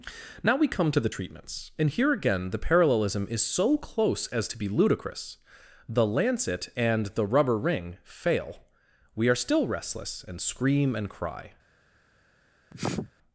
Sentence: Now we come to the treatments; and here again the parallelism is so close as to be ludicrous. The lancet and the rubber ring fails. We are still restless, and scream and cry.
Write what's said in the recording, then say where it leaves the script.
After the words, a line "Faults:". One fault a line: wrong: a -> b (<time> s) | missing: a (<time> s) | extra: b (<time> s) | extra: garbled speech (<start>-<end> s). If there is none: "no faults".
Now we come to the treatments; and here again the parallelism is so close as to be ludicrous. The lancet and the rubber ring fail. We are still restless, and scream and cry.
Faults:
wrong: fails -> fail (8.0 s)